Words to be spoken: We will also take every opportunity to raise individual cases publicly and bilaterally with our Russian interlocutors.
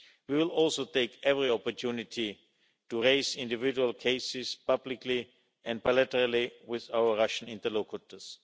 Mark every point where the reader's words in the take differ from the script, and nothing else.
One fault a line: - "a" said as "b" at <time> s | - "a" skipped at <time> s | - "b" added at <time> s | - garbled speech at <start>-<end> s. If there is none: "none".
none